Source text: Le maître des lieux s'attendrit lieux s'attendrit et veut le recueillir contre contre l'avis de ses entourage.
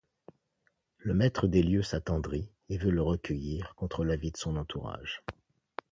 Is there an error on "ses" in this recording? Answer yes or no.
yes